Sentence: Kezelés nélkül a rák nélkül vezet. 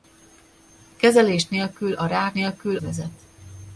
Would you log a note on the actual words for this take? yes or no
no